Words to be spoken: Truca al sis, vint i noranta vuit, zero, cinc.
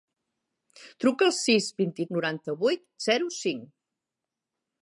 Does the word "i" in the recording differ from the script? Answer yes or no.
no